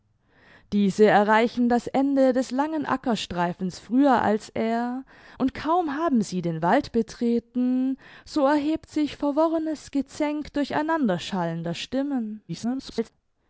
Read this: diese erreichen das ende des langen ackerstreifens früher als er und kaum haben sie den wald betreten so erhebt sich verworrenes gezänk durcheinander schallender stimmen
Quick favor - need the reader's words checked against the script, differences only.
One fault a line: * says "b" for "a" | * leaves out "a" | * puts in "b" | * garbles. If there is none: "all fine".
* garbles